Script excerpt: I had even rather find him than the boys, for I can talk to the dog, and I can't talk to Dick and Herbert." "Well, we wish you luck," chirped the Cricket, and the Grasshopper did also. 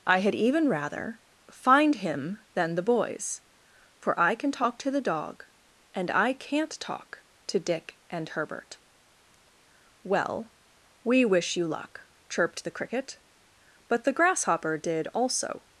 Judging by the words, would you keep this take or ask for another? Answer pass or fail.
fail